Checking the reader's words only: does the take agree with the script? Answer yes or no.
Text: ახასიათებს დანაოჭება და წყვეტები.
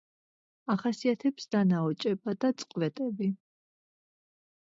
yes